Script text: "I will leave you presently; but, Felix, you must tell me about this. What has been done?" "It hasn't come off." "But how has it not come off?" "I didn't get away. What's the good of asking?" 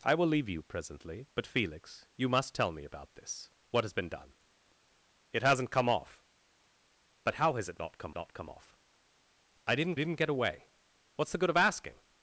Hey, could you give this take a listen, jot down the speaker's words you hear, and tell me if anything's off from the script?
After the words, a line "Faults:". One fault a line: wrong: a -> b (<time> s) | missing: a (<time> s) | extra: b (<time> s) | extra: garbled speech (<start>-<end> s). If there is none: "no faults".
"I will leave you presently; but, Felix, you must tell me about this. What has been done?" "It hasn't come off." "But how has it not come not come off?" "I didn't didn't get away. What's the good of asking?"
Faults:
extra: not come (8.2 s)
extra: didn't (9.9 s)